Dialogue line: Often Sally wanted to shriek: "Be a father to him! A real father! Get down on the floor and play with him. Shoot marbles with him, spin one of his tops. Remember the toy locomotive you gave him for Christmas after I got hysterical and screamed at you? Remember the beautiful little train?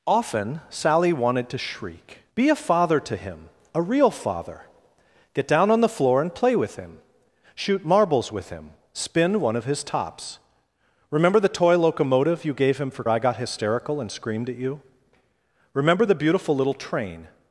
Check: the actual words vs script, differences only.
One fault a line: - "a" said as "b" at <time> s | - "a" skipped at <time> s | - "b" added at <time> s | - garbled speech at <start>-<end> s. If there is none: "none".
- "Christmas after" skipped at 13.0 s